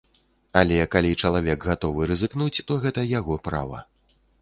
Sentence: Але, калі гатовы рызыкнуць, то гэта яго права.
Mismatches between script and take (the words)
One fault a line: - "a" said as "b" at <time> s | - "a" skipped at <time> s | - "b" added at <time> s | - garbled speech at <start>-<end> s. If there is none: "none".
- "чалавек" added at 1.2 s